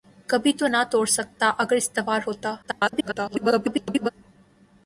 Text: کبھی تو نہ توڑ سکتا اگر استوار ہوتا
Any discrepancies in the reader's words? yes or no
yes